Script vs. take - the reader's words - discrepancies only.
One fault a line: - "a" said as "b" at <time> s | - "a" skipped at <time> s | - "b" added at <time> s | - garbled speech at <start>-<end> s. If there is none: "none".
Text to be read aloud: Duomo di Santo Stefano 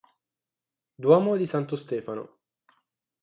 none